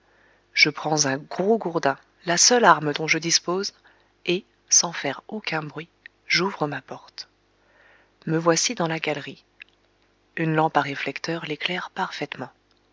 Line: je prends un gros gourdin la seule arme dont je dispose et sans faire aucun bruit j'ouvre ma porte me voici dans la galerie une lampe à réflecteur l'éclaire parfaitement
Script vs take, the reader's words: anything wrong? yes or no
no